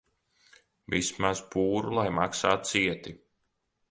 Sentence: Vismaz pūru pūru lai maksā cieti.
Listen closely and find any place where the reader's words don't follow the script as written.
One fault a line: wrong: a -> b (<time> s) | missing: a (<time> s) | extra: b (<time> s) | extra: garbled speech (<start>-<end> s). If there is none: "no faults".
missing: pūru (1.9 s)